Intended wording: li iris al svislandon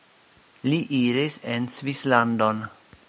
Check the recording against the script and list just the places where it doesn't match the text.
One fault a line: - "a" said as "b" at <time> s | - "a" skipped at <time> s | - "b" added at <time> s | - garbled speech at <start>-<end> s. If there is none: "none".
- "al" said as "en" at 1.6 s